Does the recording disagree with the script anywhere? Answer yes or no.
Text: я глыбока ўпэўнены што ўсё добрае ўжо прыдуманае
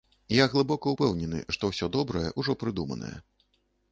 no